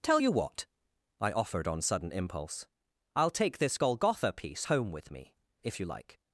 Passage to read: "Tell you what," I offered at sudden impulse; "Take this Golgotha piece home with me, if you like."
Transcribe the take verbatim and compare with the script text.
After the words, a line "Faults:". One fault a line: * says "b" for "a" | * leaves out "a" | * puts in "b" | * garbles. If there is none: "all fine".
"Tell you what," I offered on sudden impulse; "I'll take this Golgotha piece home with me, if you like."
Faults:
* says "on" for "at"
* puts in "I'll"